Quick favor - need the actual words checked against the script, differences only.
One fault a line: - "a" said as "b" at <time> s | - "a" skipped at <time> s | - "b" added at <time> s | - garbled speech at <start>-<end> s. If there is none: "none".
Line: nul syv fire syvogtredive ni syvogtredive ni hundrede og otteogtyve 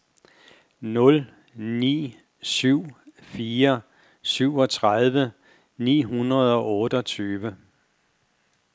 - "ni" added at 1.5 s
- "syvogtredive ni" skipped at 6.0 s